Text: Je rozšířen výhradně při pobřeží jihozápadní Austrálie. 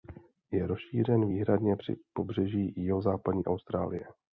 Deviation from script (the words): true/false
false